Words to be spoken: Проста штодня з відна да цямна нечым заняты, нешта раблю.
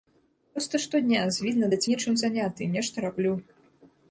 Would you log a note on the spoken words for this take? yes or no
yes